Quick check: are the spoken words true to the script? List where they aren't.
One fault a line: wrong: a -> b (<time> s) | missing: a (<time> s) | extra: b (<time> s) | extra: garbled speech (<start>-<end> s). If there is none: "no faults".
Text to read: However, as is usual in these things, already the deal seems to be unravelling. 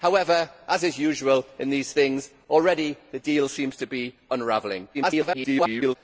extra: garbled speech (4.9-6.0 s)